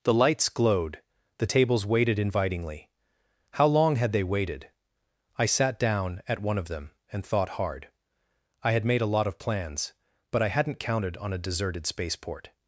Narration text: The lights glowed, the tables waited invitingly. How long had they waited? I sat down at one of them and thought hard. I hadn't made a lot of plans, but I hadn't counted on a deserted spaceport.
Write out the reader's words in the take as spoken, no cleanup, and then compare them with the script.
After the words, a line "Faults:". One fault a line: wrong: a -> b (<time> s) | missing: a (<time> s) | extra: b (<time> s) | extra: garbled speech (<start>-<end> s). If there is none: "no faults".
The lights glowed, the tables waited invitingly. How long had they waited? I sat down at one of them and thought hard. I had made a lot of plans, but I hadn't counted on a deserted spaceport.
Faults:
wrong: hadn't -> had (8.7 s)